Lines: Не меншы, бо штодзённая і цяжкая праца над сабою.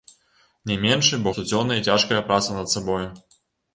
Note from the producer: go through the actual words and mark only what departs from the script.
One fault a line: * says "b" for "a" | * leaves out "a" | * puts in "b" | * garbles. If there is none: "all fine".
all fine